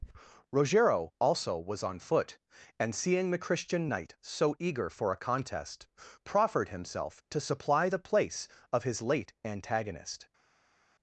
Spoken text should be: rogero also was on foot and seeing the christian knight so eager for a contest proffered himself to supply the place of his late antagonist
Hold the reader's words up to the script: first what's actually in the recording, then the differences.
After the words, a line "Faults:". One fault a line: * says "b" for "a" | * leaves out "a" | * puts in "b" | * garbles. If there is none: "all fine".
rogero also was on foot and seeing the christian knight so eager for a contest proffered himself to supply the place of his late antagonist
Faults:
all fine